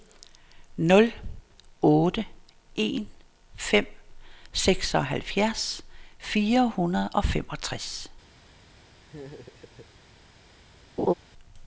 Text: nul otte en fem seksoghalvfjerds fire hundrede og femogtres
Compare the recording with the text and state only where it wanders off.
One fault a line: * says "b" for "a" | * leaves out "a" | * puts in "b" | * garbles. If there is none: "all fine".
all fine